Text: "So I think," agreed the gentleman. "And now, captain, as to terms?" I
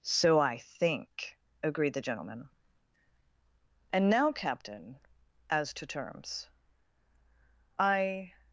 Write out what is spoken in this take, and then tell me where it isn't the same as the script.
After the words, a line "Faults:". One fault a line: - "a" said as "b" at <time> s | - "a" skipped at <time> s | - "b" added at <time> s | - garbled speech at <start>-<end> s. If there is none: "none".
"So I think," agreed the gentleman. "And now, captain, as to terms?" I
Faults:
none